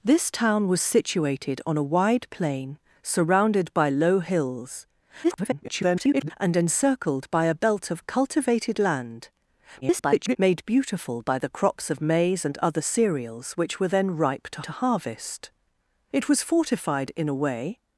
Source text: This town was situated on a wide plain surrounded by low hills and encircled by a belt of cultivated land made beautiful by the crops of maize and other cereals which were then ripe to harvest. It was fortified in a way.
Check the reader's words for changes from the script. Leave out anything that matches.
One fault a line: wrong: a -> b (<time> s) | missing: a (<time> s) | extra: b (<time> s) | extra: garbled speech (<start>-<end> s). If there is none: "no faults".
extra: garbled speech (5.2-6.3 s)
extra: garbled speech (9.8-10.4 s)
extra: to (14.6 s)